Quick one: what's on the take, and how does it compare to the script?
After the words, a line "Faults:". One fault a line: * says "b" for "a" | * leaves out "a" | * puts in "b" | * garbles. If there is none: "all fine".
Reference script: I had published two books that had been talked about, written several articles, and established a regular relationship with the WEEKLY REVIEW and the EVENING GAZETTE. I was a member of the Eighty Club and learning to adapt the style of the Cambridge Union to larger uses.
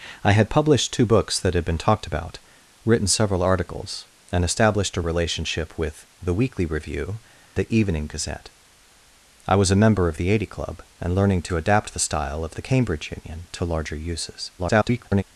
I had published two books that had been talked about, written several articles, and established a relationship with the WEEKLY REVIEW the EVENING GAZETTE. I was a member of the Eighty Club and learning to adapt the style of the Cambridge Union to larger uses. [garbled]
Faults:
* leaves out "regular"
* leaves out "and"
* garbles